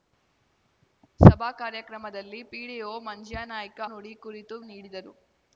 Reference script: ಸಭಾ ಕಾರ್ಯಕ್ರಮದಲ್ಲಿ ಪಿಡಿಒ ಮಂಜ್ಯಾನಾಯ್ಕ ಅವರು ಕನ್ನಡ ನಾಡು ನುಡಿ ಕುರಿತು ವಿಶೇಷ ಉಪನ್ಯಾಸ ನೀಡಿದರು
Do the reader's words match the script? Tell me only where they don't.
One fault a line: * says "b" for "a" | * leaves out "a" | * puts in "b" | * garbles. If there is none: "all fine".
* leaves out "ಅವರು ಕನ್ನಡ ನಾಡು"
* leaves out "ವಿಶೇಷ ಉಪನ್ಯಾಸ"